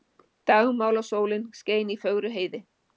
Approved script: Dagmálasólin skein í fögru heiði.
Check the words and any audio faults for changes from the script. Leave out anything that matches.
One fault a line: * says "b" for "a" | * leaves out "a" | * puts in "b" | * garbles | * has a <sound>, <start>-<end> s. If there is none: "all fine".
all fine